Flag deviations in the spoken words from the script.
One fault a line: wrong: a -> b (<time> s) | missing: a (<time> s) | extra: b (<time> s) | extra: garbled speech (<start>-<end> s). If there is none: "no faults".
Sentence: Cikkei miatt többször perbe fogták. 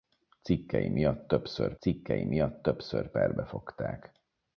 extra: cikkei miatt többször (1.8 s)